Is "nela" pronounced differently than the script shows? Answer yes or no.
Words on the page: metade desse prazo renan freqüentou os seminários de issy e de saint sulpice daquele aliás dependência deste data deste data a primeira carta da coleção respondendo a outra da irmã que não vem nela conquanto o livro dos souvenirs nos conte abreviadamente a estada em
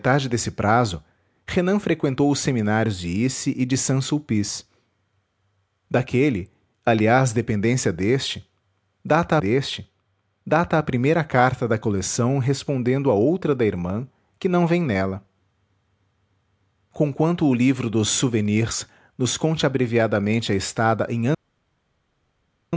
no